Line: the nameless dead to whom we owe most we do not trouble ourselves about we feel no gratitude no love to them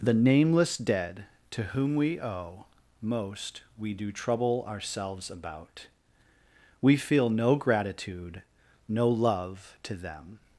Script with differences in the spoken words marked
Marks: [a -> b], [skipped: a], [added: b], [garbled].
the nameless dead to whom we owe most we do [skipped: not] trouble ourselves about we feel no gratitude no love to them